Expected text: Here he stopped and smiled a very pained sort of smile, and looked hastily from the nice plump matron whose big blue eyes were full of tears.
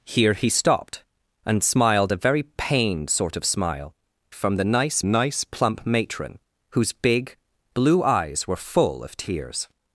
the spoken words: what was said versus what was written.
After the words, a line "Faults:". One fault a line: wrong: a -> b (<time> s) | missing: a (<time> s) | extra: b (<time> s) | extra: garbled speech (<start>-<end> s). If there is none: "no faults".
Here he stopped and smiled a very pained sort of smile, from the nice nice plump matron whose big blue eyes were full of tears.
Faults:
missing: and looked hastily (3.9 s)
extra: nice (5.0 s)